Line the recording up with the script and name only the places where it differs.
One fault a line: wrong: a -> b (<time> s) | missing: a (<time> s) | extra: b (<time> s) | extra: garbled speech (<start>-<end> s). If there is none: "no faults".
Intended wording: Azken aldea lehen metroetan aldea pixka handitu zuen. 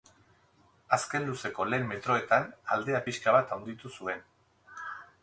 wrong: aldea -> luzeko (1.3 s)
extra: bat (3.4 s)